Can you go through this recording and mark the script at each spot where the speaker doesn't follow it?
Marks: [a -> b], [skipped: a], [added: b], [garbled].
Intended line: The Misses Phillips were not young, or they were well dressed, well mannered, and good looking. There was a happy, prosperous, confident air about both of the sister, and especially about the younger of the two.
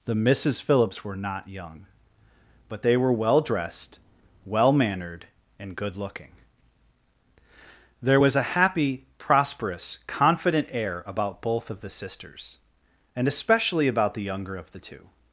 The Misses Phillips were not young, [or -> but] they were well dressed, well mannered, and good looking. There was a happy, prosperous, confident air about both of the [sister, -> sisters] and especially about the younger of the two.